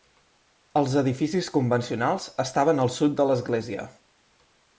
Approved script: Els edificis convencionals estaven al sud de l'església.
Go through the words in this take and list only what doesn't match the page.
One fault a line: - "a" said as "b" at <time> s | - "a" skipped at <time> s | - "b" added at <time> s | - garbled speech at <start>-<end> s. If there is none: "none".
none